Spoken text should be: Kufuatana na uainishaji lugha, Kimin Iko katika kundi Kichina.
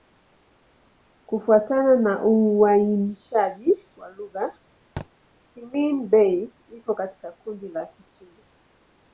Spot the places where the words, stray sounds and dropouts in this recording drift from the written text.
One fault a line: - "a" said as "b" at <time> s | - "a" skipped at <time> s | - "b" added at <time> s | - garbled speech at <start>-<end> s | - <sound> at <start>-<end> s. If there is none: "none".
- "wa" added at 4.0 s
- thud at 5.0-5.1 s
- "Bei" added at 6.1 s
- "la" added at 7.7 s